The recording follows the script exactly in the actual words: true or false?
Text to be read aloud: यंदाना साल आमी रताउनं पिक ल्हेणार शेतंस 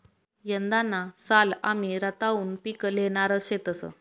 true